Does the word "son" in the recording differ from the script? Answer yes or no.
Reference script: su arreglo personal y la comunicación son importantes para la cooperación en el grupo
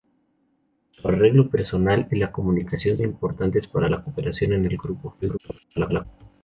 yes